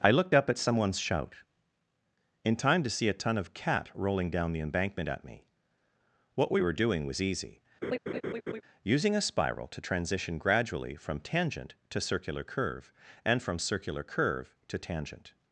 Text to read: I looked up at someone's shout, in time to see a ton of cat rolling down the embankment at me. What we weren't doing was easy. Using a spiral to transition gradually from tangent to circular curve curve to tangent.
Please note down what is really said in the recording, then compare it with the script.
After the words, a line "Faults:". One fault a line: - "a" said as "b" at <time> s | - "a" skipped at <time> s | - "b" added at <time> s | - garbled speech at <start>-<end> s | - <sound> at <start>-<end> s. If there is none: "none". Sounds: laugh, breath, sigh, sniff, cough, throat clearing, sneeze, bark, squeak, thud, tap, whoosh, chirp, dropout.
I looked up at someone's shout, in time to see a ton of cat rolling down the embankment at me. What we were doing was easy. Using a spiral to transition gradually from tangent to circular curve and from circular curve to tangent.
Faults:
- "weren't" said as "were" at 6.6 s
- laugh at 7.8-8.6 s
- "and from circular" added at 13.2 s